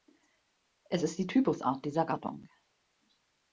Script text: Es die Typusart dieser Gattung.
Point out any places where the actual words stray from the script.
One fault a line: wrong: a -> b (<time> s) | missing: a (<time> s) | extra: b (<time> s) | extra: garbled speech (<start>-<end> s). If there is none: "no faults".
extra: ist (1.0 s)